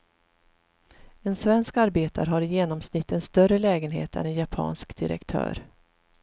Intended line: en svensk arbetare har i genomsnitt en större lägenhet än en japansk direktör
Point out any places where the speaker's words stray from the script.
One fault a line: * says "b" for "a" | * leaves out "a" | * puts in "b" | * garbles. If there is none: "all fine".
all fine